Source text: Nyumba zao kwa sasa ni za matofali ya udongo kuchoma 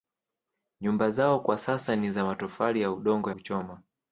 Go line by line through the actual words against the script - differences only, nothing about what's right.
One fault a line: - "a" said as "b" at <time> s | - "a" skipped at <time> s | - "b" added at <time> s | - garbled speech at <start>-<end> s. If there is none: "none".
none